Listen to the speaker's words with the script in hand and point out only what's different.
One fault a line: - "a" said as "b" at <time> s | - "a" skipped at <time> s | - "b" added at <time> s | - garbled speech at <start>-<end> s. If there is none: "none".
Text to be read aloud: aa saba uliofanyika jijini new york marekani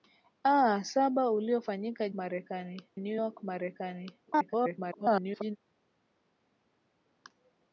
- "jijini" said as "marekani" at 2.1 s
- garbled speech at 4.3-5.6 s